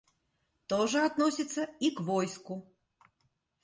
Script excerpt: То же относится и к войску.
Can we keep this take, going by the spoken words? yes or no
yes